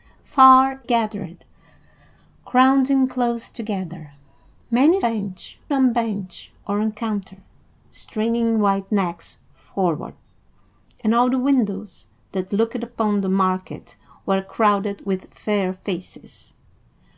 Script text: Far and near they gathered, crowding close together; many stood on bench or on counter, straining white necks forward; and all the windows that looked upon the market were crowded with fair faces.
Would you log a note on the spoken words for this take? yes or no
yes